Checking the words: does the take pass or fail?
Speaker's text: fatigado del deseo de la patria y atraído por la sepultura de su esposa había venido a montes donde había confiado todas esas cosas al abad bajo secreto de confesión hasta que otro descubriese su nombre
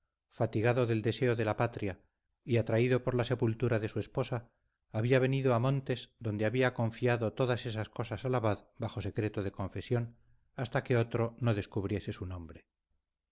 fail